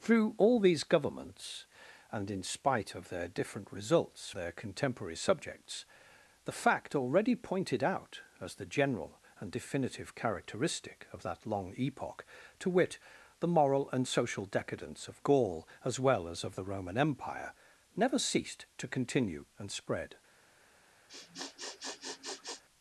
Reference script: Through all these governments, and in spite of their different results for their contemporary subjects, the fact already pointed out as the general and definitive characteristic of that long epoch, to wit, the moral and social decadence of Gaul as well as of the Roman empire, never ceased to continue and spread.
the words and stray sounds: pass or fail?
fail